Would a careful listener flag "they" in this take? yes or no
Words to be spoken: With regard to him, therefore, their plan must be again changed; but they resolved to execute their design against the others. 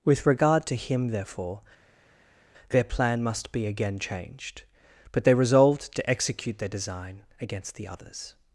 no